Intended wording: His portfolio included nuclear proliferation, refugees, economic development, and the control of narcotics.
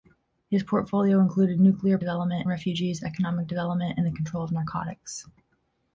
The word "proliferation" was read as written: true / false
false